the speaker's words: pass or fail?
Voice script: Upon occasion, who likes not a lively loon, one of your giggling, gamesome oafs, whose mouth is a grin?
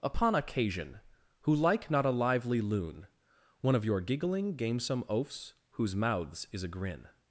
fail